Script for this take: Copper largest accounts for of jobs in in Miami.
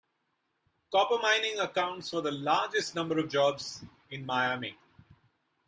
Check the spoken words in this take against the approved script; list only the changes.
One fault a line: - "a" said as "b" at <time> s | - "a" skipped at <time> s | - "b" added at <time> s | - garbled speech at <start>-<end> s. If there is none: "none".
- "largest" said as "mining" at 1.2 s
- "the largest number" added at 2.2 s
- "in" skipped at 4.2 s